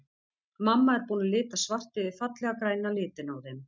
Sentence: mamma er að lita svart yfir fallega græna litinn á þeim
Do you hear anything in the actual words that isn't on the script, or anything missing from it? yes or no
yes